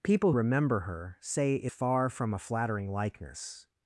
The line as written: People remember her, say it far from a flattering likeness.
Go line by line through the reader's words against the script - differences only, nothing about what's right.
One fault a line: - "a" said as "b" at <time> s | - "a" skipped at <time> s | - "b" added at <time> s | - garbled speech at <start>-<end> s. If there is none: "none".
none